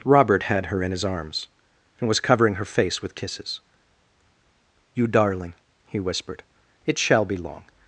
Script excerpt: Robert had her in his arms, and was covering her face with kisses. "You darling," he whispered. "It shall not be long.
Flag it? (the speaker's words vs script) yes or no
yes